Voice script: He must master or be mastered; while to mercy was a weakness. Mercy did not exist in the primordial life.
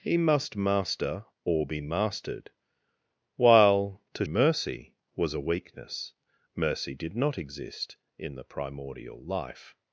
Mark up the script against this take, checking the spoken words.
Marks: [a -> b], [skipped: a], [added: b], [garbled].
He must master or be mastered; while to mercy was a weakness. Mercy did not exist in the primordial life.